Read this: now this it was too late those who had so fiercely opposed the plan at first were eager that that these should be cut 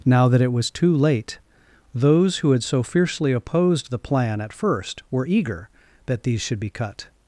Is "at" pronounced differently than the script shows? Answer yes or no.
no